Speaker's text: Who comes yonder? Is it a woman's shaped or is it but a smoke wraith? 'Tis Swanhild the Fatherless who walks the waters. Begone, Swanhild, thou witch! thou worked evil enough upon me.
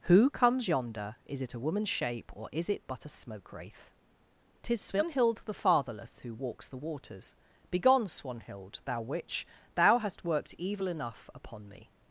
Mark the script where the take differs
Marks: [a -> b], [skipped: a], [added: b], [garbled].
Who comes yonder? Is it a woman's [shaped -> shape] or is it but a smoke wraith? 'Tis Swanhild the Fatherless who walks the waters. Begone, Swanhild, thou witch! thou [added: hast] worked evil enough upon me.